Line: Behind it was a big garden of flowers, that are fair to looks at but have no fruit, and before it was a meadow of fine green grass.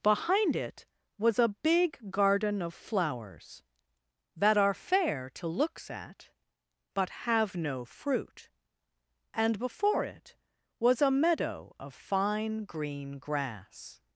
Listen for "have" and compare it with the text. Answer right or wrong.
right